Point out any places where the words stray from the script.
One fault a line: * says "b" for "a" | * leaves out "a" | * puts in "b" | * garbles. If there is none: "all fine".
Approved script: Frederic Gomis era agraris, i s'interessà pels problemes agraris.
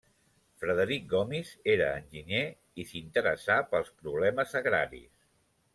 * says "enginyer" for "agraris"